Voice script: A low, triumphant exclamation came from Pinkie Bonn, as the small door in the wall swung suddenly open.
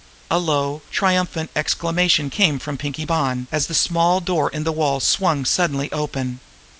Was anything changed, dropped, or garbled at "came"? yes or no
no